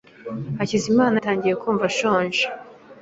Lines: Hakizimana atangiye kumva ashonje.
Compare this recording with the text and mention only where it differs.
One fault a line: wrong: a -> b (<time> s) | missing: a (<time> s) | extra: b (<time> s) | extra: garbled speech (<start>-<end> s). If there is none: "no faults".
no faults